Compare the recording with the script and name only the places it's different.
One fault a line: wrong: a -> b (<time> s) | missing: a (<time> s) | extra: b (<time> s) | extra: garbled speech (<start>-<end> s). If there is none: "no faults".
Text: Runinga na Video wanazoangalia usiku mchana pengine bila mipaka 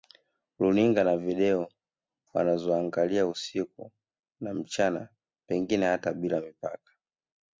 extra: na (4.4 s)
extra: hata (5.8 s)